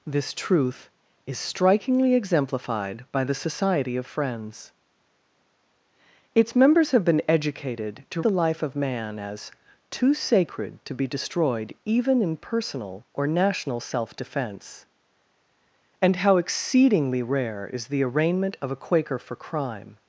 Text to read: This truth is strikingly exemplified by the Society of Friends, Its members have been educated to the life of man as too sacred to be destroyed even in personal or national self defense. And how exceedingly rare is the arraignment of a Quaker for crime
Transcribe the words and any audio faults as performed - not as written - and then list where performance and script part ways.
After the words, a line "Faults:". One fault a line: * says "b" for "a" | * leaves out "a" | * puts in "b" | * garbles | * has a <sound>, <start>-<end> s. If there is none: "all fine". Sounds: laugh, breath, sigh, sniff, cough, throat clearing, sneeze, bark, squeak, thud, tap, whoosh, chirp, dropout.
This truth is strikingly exemplified by the Society of Friends, Its members have been educated to the life of man as too sacred to be destroyed even in personal or national self defense. And how exceedingly rare is the arraignment of a Quaker for crime
Faults:
all fine